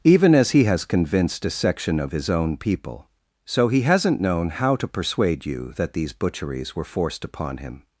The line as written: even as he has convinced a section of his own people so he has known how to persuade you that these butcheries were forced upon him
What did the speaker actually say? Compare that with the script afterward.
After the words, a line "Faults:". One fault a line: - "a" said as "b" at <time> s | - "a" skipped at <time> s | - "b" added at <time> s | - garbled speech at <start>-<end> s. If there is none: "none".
even as he has convinced a section of his own people so he hasn't known how to persuade you that these butcheries were forced upon him
Faults:
- "has" said as "hasn't" at 3.8 s